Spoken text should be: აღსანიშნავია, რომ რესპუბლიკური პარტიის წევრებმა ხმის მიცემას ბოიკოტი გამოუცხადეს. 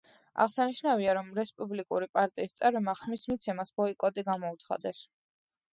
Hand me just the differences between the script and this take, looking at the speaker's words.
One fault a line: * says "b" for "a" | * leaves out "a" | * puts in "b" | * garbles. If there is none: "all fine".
all fine